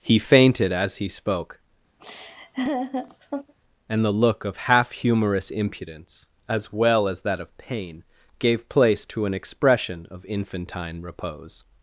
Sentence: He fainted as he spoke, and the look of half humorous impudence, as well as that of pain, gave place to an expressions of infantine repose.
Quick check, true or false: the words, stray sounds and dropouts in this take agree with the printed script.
false